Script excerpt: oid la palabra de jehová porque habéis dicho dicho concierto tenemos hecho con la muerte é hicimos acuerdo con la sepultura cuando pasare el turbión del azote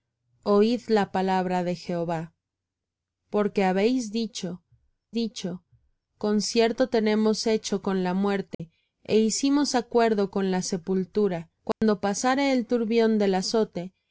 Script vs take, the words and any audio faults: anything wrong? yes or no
yes